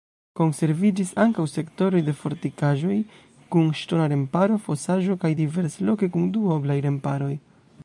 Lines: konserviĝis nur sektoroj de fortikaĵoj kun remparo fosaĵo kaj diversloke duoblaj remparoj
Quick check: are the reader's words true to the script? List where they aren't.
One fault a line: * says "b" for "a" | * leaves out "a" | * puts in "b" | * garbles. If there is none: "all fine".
* says "ankaŭ" for "nur"
* puts in "ŝtona"
* puts in "kun"